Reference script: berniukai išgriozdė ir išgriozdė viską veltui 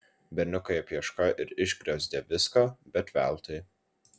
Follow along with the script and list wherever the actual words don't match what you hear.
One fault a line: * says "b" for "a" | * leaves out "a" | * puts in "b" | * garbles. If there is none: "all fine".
* says "apieškojo" for "išgriozdė"
* puts in "bet"